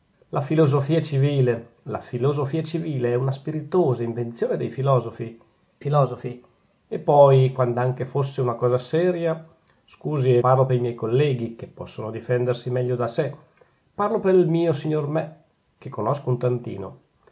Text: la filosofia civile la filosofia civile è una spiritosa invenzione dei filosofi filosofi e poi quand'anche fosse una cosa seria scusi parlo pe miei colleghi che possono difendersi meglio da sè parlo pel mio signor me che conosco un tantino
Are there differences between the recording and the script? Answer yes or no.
no